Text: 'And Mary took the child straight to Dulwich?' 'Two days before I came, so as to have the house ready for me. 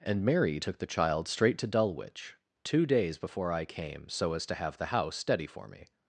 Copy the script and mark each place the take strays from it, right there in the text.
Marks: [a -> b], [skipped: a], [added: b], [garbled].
'And Mary took the child straight to Dulwich?' 'Two days before I came, so as to have the house [ready -> steady] for me.